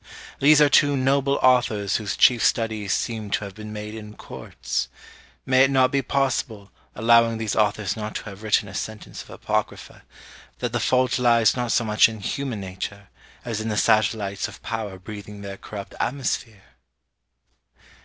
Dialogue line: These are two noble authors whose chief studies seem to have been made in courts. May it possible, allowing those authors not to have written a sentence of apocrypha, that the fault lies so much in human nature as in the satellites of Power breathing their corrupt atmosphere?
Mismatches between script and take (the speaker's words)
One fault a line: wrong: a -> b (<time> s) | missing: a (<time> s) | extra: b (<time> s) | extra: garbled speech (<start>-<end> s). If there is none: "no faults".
extra: not be (5.7 s)
wrong: those -> these (7.4 s)
extra: not (11.5 s)